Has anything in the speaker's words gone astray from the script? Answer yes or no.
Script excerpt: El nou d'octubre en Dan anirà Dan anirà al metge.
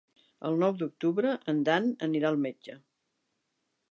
yes